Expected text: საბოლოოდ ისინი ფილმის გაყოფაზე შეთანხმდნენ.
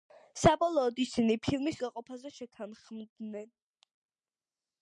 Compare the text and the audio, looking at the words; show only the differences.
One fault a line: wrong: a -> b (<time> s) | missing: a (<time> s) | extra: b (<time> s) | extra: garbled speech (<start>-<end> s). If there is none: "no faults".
no faults